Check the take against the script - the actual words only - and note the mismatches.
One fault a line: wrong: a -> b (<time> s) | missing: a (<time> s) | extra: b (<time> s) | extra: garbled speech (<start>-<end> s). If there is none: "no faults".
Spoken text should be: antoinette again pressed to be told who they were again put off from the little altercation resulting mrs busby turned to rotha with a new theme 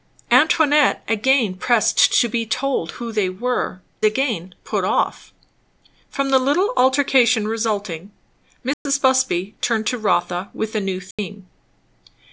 no faults